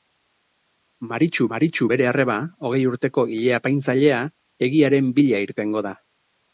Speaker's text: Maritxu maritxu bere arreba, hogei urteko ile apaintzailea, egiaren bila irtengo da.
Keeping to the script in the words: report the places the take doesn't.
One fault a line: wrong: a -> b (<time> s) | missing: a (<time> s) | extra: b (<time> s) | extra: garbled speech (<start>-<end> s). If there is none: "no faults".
no faults